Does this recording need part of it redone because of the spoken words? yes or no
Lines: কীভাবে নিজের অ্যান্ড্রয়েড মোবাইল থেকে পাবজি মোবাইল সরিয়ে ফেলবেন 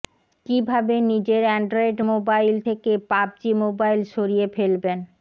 no